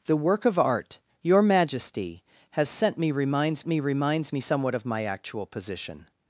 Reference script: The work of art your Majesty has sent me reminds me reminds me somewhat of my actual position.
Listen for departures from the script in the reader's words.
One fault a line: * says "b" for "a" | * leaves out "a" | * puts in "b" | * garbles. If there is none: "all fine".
all fine